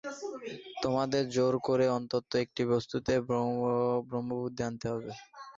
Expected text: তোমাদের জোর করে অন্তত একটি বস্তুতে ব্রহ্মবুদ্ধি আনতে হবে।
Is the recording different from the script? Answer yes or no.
no